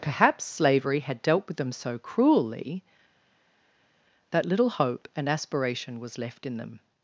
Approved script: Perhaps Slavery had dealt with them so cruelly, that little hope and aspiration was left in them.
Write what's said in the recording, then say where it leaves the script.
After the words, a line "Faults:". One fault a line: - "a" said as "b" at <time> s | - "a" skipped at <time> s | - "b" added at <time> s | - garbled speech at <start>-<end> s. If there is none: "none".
Perhaps Slavery had dealt with them so cruelly, that little hope and aspiration was left in them.
Faults:
none